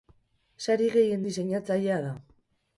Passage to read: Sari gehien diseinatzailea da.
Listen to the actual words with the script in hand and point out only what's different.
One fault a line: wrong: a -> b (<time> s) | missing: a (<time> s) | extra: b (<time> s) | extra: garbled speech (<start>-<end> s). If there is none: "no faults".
no faults